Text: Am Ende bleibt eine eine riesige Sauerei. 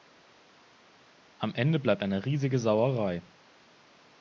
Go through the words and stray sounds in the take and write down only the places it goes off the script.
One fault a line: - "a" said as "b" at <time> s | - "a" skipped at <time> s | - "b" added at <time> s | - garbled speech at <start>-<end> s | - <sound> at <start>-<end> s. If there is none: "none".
- "eine" skipped at 2.2 s